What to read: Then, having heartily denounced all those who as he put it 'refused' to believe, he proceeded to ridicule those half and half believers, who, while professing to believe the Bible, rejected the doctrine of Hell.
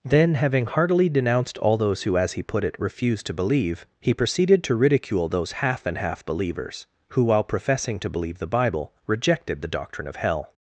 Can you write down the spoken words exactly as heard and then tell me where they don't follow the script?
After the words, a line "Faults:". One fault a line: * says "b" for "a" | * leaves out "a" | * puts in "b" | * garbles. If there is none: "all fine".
Then, having heartily denounced all those who as he put it 'refused' to believe, he proceeded to ridicule those half and half believers, who, while professing to believe the Bible, rejected the doctrine of Hell.
Faults:
all fine